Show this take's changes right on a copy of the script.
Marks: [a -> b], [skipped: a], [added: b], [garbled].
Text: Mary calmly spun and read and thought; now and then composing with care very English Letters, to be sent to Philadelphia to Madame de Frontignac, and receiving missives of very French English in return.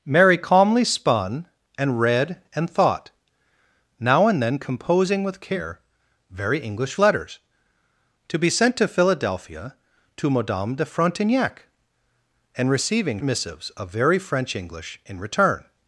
Mary calmly spun and read and thought; now and then composing with care very English Letters, to be sent to Philadelphia to Madame de Frontignac, and receiving missives of very French English in return.